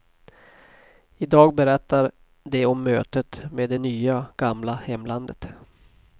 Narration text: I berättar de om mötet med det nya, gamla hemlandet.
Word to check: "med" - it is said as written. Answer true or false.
true